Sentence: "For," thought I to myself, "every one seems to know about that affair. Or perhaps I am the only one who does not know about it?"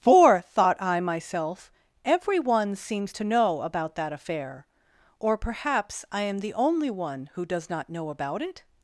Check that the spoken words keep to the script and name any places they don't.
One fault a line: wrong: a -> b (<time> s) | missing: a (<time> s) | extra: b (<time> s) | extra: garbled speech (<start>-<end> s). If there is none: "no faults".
missing: to (1.0 s)